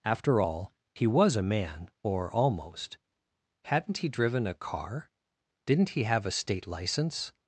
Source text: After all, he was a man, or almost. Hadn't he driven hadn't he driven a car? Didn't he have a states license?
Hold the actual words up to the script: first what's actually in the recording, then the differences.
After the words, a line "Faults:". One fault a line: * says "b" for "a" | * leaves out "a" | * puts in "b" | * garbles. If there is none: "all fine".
After all, he was a man, or almost. Hadn't he driven a car? Didn't he have a state license?
Faults:
* leaves out "hadn't he driven"
* says "state" for "states"